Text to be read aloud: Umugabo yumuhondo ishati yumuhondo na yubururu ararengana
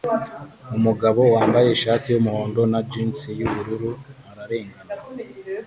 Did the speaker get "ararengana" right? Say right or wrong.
right